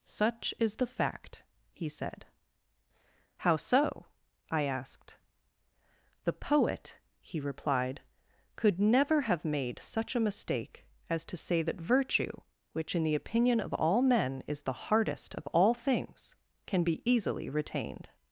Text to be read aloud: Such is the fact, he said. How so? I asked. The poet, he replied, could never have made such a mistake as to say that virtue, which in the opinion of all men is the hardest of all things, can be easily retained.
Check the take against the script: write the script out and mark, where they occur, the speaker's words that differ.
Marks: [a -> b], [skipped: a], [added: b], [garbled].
Such is the fact, he said. How so? I asked. The poet, he replied, could never have made such a mistake as to say that virtue, which in the opinion of all men is the hardest of all things, can be easily retained.